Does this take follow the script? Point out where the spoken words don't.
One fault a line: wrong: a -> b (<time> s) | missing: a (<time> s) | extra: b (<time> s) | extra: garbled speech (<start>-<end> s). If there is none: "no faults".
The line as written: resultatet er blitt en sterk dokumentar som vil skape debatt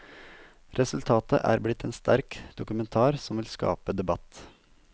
no faults